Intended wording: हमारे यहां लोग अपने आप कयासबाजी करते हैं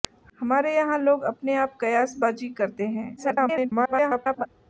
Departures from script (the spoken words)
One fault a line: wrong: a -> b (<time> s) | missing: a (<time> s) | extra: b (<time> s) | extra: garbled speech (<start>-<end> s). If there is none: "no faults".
extra: garbled speech (3.2-4.5 s)